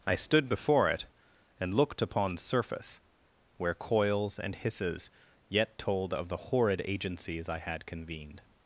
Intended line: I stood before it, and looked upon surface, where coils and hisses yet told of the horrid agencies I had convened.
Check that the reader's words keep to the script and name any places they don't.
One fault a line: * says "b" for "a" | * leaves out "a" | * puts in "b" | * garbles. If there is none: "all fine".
all fine